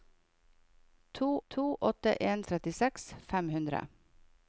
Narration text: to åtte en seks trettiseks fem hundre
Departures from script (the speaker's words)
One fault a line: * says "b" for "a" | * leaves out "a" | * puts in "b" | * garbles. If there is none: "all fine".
* puts in "to"
* leaves out "seks"